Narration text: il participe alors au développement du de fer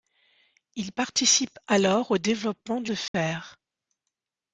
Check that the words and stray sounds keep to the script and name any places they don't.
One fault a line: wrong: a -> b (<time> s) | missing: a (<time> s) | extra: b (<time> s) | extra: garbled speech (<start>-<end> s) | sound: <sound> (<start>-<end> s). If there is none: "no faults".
sound: dropout (3.1-3.1 s)